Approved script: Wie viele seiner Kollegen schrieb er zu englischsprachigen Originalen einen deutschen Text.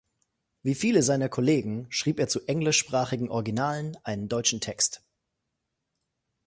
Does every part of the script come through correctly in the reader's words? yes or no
yes